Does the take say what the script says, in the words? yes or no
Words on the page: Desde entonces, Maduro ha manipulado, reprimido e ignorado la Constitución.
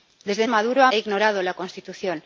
no